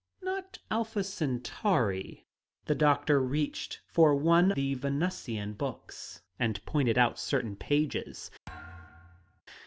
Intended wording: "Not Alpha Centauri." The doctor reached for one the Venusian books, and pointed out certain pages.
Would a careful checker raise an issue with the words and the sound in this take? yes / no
yes